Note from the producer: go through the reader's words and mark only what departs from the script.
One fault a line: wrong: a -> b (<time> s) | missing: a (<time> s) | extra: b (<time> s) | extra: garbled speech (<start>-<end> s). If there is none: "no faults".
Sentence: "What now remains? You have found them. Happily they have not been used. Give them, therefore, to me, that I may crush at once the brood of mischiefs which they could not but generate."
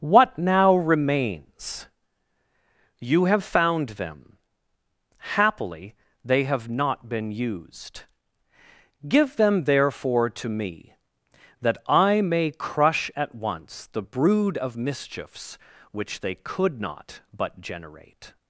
no faults